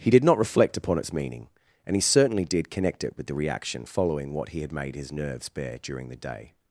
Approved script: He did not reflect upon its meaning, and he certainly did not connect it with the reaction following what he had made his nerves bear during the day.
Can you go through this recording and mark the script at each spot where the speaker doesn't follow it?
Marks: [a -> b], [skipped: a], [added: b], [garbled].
He did not reflect upon its meaning, and he certainly did [skipped: not] connect it with the reaction following what he had made his nerves bear during the day.